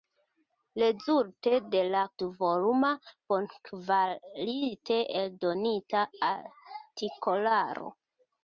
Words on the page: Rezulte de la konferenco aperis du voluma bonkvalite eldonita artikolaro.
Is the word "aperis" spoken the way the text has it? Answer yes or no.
no